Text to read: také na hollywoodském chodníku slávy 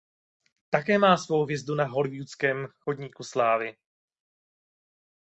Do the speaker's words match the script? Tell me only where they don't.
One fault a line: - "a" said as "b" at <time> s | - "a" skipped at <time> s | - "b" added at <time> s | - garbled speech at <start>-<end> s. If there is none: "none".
- "má svou hvězdu" added at 1.0 s